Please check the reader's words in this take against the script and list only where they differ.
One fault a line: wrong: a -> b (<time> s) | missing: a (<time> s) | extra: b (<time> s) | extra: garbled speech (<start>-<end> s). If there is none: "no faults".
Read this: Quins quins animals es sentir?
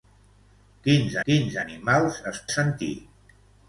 no faults